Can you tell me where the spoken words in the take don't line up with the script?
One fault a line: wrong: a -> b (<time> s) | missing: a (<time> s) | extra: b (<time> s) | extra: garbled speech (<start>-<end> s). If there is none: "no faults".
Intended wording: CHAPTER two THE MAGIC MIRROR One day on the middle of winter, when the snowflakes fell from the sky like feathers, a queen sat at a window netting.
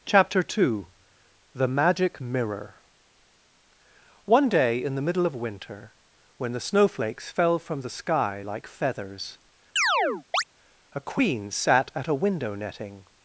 wrong: on -> in (4.8 s)